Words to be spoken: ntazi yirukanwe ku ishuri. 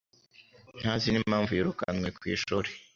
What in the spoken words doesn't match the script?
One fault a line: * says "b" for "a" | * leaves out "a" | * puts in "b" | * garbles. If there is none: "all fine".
* puts in "n'impamvu"